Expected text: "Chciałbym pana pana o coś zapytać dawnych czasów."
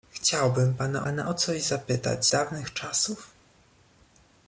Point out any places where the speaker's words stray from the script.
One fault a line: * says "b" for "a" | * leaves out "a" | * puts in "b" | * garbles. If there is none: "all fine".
all fine